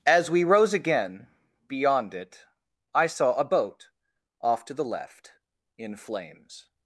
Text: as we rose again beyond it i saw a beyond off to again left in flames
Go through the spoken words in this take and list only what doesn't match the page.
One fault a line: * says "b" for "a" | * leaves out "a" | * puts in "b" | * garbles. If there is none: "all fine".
* says "boat" for "beyond"
* says "the" for "again"